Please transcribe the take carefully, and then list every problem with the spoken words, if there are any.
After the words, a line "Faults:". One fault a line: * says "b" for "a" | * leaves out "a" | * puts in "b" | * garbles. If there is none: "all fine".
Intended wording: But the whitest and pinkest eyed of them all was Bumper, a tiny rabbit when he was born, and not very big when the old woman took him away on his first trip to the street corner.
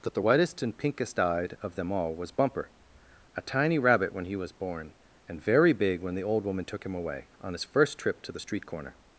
But the whitest and pinkest eyed of them all was Bumper, a tiny rabbit when he was born, and very big when the old woman took him away on his first trip to the street corner.
Faults:
* leaves out "not"